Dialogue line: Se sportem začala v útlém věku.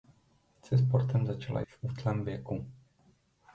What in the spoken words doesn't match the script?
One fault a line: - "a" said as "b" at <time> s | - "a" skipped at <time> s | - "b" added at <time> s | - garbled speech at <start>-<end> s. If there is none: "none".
none